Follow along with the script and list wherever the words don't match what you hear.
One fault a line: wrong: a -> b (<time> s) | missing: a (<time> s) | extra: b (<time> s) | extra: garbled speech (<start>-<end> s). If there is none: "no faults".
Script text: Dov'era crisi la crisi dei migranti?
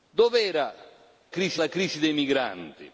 no faults